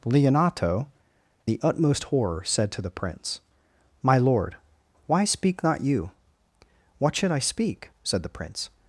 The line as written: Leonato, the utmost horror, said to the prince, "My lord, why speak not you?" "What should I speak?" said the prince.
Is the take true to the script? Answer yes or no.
yes